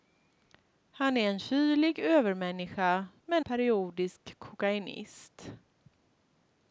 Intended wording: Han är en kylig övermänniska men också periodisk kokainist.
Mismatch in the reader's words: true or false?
true